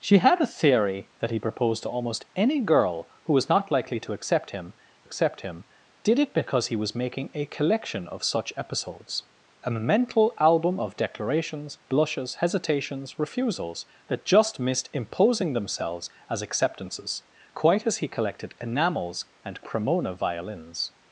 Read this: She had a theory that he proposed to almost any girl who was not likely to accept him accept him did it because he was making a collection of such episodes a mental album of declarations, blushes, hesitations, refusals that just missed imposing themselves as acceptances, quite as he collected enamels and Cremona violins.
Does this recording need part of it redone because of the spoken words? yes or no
no